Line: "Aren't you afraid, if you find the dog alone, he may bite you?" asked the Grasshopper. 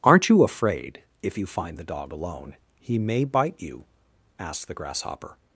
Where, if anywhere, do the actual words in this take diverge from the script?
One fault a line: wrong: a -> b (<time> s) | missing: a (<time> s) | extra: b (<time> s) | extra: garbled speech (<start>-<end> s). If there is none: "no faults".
no faults